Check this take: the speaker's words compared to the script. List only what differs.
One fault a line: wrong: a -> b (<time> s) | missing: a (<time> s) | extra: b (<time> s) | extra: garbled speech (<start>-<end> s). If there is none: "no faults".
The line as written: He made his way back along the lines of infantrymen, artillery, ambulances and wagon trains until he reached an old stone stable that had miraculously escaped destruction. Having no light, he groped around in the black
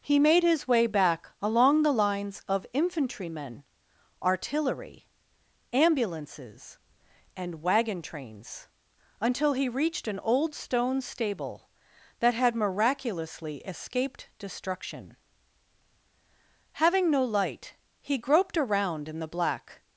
no faults